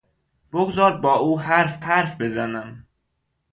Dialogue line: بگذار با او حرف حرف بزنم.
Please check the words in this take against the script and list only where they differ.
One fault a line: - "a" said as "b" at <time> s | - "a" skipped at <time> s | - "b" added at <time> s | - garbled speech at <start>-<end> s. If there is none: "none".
none